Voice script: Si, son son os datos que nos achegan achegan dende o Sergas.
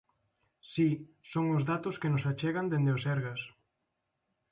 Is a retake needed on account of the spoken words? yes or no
yes